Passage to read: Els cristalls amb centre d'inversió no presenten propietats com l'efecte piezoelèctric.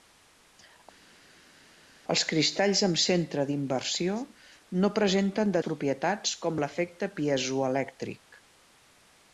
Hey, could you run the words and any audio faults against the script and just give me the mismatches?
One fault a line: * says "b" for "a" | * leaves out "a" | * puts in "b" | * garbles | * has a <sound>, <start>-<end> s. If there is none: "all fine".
all fine